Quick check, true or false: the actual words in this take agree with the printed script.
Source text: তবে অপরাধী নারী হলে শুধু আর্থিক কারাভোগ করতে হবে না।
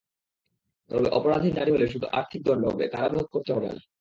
false